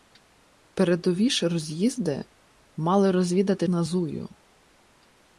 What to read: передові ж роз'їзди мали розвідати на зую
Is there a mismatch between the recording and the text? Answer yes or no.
no